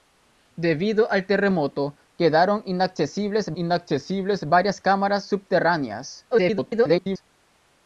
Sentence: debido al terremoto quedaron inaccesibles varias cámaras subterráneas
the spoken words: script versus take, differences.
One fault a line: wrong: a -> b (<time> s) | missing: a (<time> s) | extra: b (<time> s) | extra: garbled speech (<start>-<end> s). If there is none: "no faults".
extra: inaccesibles (3.5 s)
extra: garbled speech (6.3-7.2 s)